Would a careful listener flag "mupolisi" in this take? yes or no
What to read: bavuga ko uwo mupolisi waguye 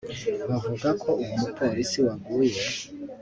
no